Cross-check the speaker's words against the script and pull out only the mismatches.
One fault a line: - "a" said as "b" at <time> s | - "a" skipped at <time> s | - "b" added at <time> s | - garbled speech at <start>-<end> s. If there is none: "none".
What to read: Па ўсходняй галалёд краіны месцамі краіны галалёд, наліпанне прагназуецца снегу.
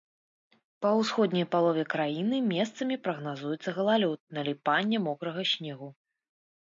- "галалёд" said as "палове" at 1.6 s
- "краіны" said as "прагназуецца" at 3.1 s
- "прагназуецца" said as "мокрага" at 5.1 s